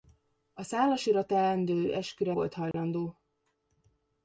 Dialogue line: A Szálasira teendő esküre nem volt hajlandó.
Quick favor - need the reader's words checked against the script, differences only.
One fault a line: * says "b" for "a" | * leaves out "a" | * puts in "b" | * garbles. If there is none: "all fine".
* leaves out "nem"